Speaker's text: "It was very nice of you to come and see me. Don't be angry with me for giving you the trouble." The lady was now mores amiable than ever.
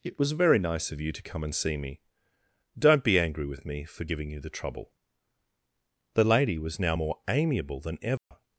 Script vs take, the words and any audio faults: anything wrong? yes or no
yes